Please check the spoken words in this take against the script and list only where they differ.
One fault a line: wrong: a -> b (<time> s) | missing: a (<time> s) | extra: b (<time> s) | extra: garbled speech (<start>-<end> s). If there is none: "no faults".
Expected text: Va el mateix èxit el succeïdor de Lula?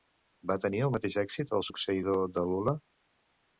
extra: tenir (0.6 s)